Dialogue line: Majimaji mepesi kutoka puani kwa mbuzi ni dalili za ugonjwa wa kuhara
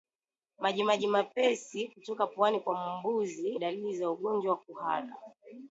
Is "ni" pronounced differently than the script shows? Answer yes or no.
yes